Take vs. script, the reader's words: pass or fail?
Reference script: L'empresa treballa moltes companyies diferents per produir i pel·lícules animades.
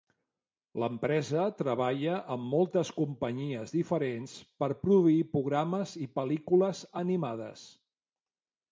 fail